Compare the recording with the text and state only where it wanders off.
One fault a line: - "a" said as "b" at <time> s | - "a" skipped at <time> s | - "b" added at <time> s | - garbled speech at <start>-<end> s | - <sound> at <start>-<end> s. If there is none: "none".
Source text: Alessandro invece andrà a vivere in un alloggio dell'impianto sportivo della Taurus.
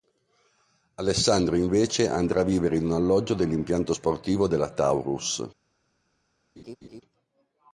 - laugh at 6.6-7.0 s